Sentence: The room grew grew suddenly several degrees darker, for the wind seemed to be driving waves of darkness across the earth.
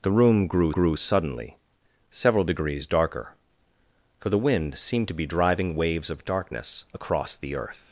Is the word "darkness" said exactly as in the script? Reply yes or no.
yes